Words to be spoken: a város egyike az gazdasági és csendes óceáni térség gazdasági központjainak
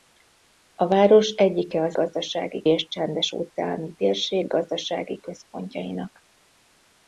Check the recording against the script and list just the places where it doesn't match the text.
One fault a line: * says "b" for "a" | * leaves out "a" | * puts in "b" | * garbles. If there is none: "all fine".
all fine